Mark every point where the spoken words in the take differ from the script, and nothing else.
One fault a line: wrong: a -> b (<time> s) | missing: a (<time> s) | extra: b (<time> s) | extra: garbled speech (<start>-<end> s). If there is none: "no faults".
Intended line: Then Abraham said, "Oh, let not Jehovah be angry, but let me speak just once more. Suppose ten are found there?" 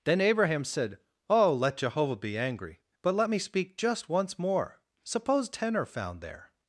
missing: not (1.8 s)